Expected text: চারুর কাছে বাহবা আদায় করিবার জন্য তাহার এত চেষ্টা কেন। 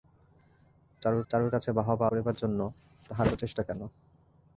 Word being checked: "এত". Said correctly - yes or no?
no